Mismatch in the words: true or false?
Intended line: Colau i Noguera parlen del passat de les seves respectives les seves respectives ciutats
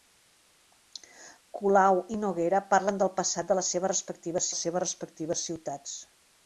false